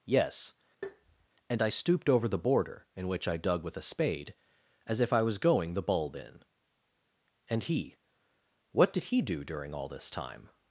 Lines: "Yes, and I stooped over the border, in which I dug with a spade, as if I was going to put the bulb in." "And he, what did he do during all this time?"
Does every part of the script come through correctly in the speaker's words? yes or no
no